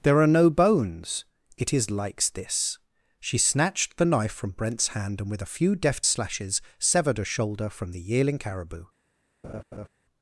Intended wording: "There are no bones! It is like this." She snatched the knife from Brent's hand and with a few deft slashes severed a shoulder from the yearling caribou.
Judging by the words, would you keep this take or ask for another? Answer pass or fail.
fail